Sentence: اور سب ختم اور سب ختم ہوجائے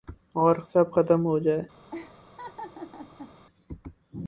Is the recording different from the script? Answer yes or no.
yes